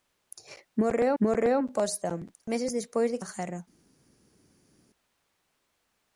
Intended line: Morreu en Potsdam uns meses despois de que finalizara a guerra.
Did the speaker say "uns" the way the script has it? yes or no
no